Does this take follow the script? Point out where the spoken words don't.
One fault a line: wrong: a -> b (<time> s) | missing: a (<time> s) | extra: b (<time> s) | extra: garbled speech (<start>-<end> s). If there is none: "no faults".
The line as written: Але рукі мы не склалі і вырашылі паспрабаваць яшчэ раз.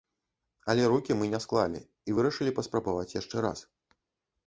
no faults